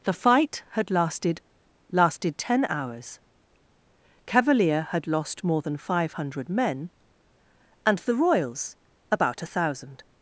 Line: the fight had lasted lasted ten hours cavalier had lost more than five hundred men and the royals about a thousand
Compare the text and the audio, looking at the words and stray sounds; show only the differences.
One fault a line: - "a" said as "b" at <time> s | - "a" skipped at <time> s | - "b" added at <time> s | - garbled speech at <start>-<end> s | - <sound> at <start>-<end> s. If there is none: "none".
none